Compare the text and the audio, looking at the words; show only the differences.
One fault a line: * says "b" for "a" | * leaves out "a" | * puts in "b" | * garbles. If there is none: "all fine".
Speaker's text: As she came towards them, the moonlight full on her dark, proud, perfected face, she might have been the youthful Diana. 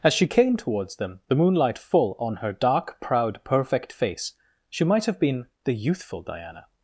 * says "perfect" for "perfected"